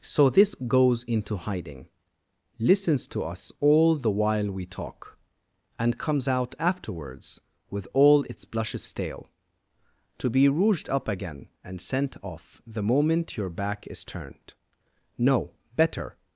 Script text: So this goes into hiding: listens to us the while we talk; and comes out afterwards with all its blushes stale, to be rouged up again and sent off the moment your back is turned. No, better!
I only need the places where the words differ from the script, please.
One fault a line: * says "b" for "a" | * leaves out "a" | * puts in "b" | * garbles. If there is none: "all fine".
* puts in "all"